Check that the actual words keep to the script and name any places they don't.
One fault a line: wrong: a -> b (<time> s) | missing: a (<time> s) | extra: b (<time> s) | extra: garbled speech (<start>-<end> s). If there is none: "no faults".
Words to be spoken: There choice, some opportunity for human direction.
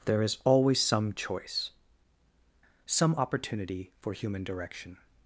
extra: is always some (0.2 s)